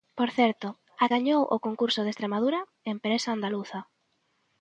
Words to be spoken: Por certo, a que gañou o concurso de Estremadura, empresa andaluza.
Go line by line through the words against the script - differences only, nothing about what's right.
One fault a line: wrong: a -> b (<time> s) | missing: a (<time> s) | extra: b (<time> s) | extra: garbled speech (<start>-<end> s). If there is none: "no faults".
missing: que (1.1 s)